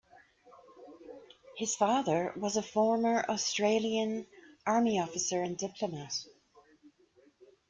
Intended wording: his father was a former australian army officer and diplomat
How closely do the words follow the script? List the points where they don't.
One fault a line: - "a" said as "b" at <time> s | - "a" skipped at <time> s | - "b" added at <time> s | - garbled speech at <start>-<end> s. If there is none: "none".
none